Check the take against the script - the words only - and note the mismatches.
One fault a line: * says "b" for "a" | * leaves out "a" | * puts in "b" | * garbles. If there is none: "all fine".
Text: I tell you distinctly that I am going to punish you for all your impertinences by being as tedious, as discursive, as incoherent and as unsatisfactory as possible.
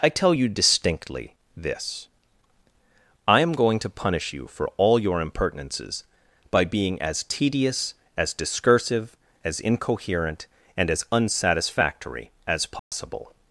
* says "this" for "that"